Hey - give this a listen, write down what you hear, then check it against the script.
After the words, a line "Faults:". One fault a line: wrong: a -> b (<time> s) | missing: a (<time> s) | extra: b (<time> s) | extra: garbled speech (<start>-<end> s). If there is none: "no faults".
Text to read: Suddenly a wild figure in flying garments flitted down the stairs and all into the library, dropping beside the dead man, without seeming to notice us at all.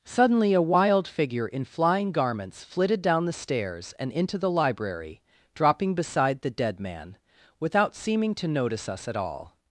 Suddenly a wild figure in flying garments flitted down the stairs and into the library, dropping beside the dead man, without seeming to notice us at all.
Faults:
missing: all (4.1 s)